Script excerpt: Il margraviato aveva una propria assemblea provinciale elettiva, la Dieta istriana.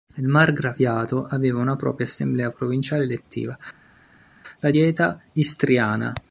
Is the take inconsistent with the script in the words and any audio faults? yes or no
no